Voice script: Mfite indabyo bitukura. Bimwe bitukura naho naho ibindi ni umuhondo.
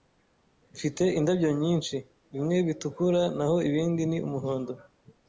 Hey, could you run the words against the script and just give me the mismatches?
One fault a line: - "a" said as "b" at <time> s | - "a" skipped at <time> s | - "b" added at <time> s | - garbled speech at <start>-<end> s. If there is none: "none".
- "bitukura" said as "nyinshi" at 1.6 s
- "naho" skipped at 3.6 s